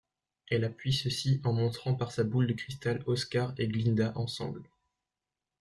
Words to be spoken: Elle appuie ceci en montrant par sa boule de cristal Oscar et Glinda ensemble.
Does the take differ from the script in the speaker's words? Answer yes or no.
no